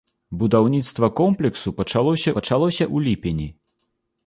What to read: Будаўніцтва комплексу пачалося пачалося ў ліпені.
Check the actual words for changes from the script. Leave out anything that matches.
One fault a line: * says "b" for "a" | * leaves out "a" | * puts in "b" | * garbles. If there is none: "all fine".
all fine